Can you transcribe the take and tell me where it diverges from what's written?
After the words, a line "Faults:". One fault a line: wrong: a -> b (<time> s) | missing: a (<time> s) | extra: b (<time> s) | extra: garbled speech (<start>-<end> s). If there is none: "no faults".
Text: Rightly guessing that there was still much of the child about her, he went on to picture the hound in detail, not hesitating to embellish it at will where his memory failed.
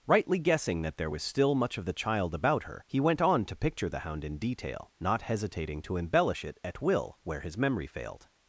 Rightly guessing that there was still much of the child about her, he went on to picture the hound in detail, not hesitating to embellish it at will where his memory failed.
Faults:
no faults